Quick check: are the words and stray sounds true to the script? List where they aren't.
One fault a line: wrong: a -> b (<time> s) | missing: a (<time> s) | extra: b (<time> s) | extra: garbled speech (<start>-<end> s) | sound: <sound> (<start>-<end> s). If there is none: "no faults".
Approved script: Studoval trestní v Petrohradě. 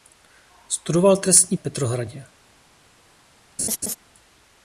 sound: laugh (3.6-4.0 s)